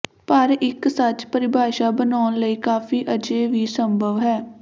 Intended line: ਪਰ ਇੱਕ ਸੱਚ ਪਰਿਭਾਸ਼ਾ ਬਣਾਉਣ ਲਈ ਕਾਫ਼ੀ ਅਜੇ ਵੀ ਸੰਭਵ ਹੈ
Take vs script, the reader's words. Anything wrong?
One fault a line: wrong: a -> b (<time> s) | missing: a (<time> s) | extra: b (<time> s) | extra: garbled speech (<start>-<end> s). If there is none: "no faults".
no faults